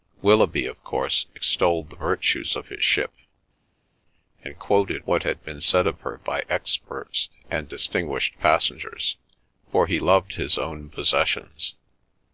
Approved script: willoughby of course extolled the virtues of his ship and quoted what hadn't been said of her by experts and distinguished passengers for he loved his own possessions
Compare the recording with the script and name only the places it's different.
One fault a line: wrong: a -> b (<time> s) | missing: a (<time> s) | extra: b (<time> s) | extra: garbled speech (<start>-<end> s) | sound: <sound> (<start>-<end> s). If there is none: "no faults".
wrong: hadn't -> had (5.2 s)